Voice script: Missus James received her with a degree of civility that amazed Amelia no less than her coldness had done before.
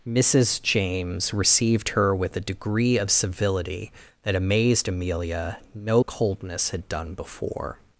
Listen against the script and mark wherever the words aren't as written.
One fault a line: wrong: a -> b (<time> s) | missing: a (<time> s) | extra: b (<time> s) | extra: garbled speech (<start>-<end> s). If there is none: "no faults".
missing: less than her (6.0 s)